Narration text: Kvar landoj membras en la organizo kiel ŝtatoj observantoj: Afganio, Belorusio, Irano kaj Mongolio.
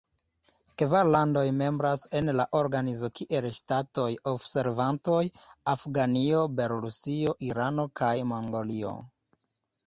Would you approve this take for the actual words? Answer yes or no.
yes